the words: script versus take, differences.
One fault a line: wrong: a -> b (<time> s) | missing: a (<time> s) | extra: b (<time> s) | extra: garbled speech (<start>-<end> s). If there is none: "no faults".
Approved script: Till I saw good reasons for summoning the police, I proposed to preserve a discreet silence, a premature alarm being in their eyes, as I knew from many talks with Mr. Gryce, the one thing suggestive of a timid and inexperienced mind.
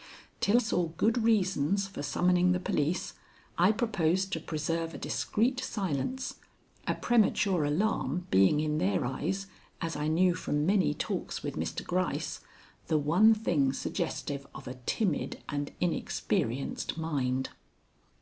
missing: I (0.6 s)